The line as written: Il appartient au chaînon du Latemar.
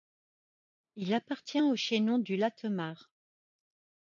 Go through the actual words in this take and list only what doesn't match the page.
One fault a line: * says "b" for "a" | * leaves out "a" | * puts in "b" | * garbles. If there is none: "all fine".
all fine